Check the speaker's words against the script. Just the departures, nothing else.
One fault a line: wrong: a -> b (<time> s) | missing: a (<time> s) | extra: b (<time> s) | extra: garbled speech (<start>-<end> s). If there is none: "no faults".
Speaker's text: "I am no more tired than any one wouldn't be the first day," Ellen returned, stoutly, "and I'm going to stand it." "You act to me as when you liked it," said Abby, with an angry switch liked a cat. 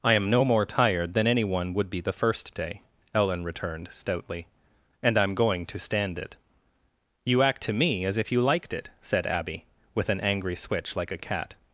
wrong: wouldn't -> would (1.7 s)
wrong: when -> if (8.2 s)
wrong: liked -> like (11.0 s)